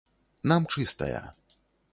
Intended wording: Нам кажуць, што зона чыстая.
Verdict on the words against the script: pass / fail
fail